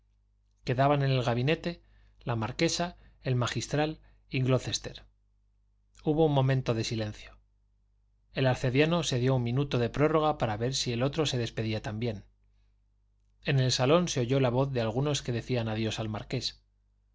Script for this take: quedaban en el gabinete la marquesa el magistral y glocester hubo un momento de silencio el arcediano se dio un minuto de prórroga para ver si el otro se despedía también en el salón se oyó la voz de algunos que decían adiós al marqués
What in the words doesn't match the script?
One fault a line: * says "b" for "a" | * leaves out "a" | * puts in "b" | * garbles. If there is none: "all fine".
all fine